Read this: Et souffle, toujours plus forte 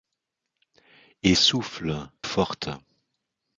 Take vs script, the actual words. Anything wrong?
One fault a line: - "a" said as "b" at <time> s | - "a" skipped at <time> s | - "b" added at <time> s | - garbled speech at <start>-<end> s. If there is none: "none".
- "toujours plus" skipped at 1.9 s